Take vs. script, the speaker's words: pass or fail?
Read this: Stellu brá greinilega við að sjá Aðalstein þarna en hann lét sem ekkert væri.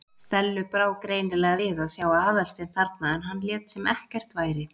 pass